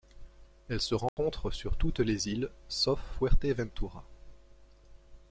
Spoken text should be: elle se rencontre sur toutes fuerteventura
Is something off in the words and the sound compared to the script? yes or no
yes